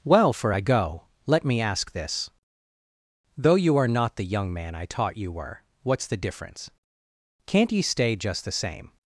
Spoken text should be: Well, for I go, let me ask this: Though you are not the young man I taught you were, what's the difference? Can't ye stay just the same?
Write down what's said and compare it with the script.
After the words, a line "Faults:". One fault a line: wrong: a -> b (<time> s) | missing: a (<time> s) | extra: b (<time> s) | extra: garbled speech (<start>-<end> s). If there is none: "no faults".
Well, for I go, let me ask this: Though you are not the young man I taught you were, what's the difference? Can't ye stay just the same?
Faults:
no faults